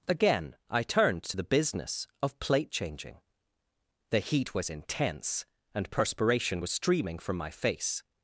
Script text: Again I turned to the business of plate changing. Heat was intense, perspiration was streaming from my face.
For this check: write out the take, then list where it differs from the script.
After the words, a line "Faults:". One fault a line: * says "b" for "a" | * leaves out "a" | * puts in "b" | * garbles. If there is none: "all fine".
Again I turned to the business of plate changing. The heat was intense, and perspiration was streaming from my face.
Faults:
* puts in "The"
* puts in "and"